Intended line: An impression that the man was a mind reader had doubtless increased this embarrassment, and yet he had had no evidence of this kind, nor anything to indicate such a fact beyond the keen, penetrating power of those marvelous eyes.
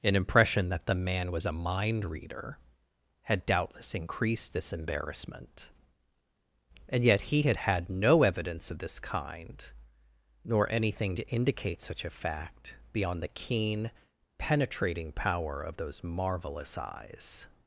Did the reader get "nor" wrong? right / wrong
right